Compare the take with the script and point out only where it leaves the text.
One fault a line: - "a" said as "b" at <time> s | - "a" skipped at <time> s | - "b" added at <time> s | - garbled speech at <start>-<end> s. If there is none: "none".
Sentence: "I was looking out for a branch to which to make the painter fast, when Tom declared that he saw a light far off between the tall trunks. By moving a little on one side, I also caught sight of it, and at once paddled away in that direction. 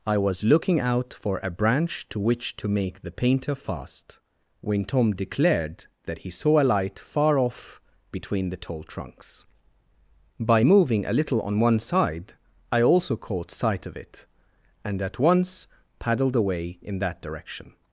none